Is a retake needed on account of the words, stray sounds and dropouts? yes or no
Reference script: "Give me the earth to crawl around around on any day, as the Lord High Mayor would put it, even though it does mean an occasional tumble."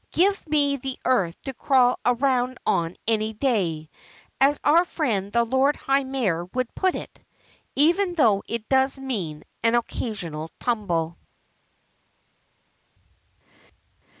yes